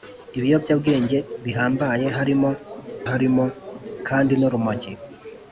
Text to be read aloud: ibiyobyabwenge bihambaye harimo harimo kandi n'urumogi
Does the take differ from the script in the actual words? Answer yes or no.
no